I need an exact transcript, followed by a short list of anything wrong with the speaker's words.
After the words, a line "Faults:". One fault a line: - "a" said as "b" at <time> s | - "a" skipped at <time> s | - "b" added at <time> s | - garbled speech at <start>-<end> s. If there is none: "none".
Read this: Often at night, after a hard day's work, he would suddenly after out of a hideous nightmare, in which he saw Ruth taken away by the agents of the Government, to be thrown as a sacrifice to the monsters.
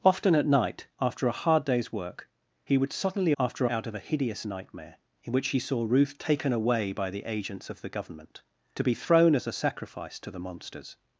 Often at night, after a hard day's work, he would suddenly after out of a hideous nightmare, in which he saw Ruth taken away by the agents of the Government, to be thrown as a sacrifice to the monsters.
Faults:
none